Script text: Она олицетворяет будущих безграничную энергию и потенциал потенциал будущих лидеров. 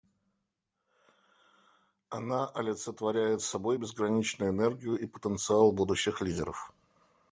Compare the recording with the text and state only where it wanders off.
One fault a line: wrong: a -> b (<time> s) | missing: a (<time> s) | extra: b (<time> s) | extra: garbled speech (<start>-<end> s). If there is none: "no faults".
wrong: будущих -> собой (3.4 s)
missing: потенциал (5.7 s)